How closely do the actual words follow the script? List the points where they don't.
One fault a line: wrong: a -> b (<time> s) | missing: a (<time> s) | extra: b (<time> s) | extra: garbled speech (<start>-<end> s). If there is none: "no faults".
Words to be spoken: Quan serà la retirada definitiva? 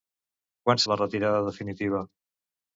missing: serà (0.8 s)